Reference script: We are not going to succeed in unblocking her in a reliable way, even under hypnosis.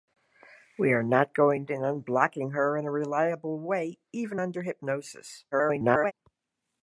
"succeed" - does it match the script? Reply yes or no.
no